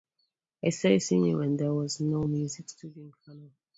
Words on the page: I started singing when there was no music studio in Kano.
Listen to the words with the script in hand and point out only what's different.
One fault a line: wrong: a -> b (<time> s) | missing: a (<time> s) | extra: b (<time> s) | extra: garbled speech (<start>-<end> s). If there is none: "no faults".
no faults